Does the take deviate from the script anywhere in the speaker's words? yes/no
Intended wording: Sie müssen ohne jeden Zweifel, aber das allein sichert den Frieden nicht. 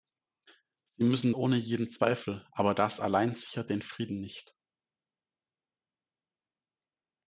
no